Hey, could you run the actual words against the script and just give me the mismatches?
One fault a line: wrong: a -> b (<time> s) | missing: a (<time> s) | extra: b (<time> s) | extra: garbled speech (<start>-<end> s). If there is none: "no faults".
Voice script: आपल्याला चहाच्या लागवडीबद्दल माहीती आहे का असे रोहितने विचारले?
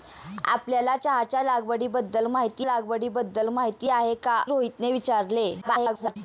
extra: लागवडीबद्दल माहीती (2.6 s)
missing: असे (4.4 s)
extra: garbled speech (5.6-6.2 s)